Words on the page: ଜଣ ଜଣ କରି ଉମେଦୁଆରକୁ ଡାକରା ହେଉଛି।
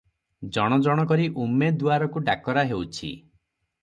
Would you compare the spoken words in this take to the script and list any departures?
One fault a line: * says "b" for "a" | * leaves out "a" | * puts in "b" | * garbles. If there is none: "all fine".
all fine